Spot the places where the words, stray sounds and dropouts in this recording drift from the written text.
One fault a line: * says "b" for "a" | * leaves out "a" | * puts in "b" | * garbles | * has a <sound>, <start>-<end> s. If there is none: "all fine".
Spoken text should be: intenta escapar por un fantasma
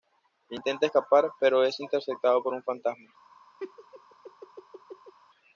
* puts in "pero es interceptado"
* has a laugh, 3.6-5.1 s